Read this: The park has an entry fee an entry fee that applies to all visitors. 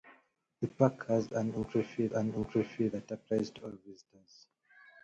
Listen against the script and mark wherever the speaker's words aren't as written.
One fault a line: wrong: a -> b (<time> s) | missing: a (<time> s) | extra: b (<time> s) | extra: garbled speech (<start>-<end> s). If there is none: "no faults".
no faults